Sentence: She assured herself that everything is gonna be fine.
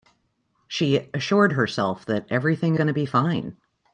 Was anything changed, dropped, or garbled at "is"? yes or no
yes